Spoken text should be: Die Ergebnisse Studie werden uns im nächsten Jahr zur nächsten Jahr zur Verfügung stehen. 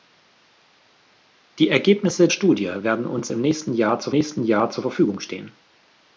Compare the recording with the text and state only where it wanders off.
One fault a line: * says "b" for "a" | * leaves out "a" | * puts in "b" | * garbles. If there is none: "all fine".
all fine